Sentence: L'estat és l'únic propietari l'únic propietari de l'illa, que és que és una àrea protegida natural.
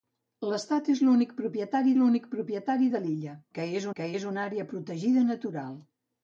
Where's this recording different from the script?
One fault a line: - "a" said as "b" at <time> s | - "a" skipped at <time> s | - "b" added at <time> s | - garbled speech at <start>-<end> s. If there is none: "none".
none